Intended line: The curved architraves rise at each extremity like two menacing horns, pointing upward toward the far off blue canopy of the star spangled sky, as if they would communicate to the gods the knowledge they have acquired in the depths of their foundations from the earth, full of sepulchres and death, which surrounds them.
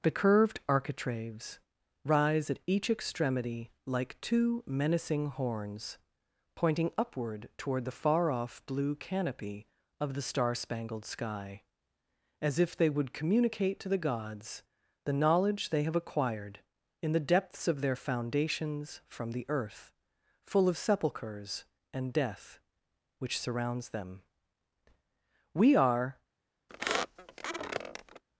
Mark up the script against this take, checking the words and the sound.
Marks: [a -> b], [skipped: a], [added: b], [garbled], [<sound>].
The curved architraves rise at each extremity like two menacing horns, pointing upward toward the far off blue canopy of the star spangled sky, as if they would communicate to the gods the knowledge they have acquired in the depths of their foundations from the earth, full of sepulchres and death, which surrounds them. [added: We are] [squeak]